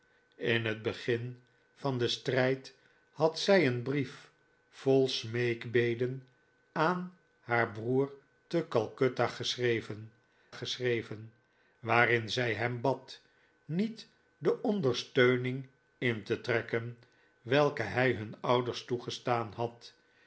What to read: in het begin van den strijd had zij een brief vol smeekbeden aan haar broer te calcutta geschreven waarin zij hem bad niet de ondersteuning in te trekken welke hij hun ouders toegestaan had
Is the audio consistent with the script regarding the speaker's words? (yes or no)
no